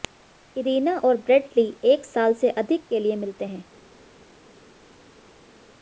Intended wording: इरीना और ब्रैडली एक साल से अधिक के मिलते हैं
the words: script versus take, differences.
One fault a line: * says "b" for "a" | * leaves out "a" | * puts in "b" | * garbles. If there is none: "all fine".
* puts in "लिए"